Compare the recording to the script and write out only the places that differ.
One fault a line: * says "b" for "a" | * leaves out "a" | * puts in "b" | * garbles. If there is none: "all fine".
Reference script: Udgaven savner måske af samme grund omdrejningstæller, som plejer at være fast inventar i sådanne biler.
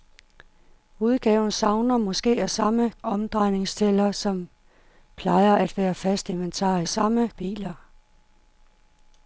* leaves out "grund"
* says "samme" for "sådanne"